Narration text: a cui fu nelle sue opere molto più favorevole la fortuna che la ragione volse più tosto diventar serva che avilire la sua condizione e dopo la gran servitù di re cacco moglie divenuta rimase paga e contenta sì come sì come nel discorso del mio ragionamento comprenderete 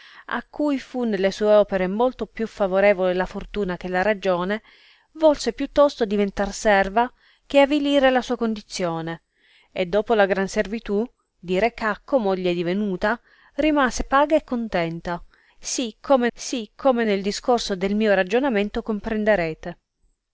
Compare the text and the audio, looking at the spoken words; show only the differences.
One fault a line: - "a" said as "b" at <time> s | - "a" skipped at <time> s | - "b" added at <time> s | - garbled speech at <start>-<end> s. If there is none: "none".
none